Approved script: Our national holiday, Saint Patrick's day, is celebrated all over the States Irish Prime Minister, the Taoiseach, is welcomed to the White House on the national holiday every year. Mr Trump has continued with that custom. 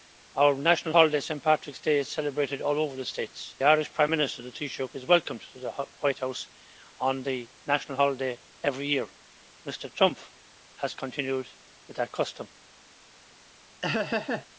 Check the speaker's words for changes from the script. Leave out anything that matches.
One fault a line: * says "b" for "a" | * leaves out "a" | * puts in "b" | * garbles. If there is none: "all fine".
all fine